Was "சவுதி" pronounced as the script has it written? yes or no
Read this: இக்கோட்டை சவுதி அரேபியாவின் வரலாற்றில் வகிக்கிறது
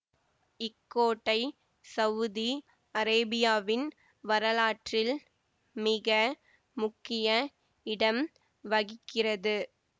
yes